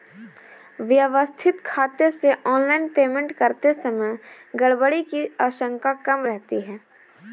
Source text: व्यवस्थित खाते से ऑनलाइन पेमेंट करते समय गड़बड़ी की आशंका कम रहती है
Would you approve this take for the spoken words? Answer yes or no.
yes